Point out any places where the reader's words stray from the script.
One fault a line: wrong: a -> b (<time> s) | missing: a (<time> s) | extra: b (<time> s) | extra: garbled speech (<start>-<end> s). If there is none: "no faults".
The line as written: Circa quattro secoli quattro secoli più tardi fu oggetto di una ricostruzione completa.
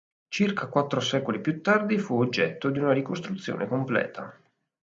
missing: quattro secoli (1.4 s)